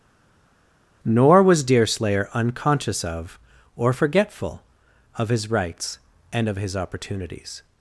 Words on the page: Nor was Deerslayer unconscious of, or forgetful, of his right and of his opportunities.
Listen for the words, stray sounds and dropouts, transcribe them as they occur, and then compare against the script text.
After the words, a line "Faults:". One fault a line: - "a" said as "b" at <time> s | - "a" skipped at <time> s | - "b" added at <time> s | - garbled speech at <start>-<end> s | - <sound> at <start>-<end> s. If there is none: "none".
Nor was Deerslayer unconscious of, or forgetful, of his rights and of his opportunities.
Faults:
- "right" said as "rights" at 5.5 s